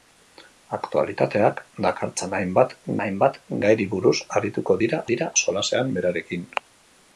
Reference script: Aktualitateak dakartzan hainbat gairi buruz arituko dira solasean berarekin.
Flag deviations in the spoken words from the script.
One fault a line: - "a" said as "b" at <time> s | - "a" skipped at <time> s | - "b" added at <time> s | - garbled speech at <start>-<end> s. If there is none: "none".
- "hainbat" added at 3.0 s
- "dira" added at 5.1 s